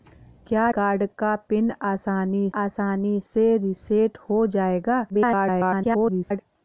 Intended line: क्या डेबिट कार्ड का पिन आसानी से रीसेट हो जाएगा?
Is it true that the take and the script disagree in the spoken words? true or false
true